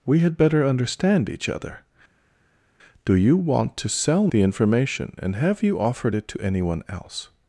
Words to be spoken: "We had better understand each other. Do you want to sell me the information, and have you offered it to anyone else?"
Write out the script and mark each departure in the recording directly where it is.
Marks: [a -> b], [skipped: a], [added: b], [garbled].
"We had better understand each other. Do you want to sell [skipped: me] the information, and have you offered it to anyone else?"